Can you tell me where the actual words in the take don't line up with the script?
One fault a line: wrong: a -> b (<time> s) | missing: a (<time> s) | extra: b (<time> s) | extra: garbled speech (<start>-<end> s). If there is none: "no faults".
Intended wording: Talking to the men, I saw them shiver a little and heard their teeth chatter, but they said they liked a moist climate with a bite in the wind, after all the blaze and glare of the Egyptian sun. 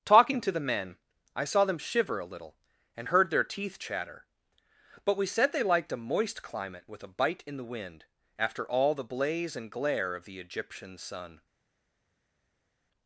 wrong: they -> we (5.2 s)